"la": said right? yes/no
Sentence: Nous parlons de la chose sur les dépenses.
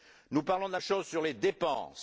yes